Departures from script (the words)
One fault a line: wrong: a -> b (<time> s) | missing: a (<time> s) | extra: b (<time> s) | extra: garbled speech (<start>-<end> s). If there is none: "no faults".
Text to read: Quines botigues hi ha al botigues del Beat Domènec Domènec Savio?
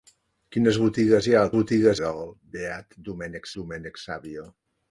no faults